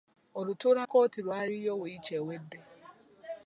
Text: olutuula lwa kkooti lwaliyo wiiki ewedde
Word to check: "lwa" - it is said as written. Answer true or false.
false